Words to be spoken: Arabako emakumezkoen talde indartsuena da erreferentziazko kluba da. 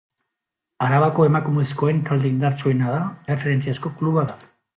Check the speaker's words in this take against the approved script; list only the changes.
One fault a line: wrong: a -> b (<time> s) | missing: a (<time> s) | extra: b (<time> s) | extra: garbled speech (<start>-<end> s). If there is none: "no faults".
no faults